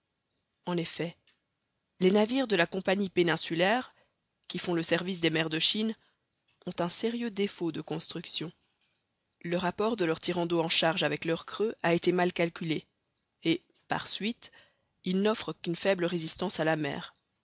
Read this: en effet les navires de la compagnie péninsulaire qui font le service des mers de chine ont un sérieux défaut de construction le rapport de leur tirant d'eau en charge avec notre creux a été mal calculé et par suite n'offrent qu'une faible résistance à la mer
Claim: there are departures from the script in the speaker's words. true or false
true